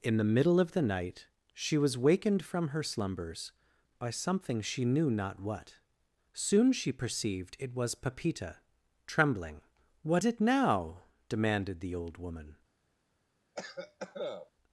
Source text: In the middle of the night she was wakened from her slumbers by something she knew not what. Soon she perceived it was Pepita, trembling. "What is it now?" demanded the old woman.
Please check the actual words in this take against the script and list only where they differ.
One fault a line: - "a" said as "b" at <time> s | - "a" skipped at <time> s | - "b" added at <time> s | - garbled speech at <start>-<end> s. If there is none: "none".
- "is" skipped at 10.2 s